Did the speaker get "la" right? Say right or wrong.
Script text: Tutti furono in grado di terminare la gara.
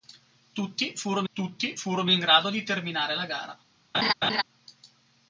right